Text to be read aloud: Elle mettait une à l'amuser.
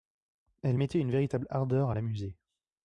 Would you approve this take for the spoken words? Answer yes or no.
no